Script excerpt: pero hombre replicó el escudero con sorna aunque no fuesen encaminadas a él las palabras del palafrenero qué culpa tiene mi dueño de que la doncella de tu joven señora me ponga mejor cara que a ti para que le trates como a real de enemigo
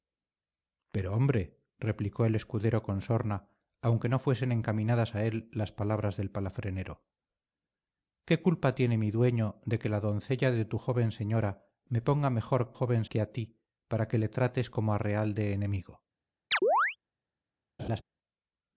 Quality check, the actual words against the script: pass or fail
fail